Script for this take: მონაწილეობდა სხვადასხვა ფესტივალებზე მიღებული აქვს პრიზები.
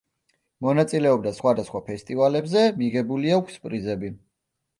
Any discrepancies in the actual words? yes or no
no